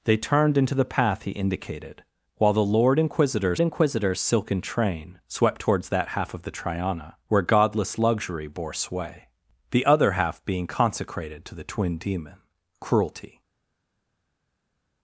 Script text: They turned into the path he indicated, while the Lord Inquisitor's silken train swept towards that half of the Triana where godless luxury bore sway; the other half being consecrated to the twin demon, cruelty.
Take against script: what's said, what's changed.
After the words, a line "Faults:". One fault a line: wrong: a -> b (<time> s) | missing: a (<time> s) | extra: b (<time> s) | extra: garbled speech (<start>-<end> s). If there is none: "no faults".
They turned into the path he indicated, while the Lord Inquisitor's Inquisitor's silken train swept towards that half of the Triana where godless luxury bore sway; the other half being consecrated to the twin demon, cruelty.
Faults:
extra: Inquisitor's (3.6 s)